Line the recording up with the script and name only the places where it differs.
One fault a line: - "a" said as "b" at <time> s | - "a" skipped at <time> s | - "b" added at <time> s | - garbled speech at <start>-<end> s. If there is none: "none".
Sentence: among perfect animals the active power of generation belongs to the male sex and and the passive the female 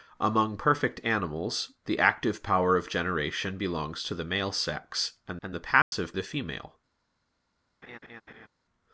none